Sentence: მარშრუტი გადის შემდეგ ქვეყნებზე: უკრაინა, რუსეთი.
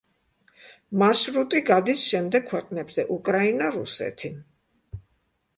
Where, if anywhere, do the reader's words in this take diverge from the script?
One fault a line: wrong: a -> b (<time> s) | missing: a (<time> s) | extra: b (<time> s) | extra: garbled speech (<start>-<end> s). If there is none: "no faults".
no faults